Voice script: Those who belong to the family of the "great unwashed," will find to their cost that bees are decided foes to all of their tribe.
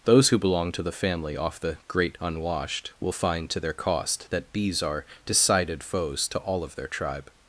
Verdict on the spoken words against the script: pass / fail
fail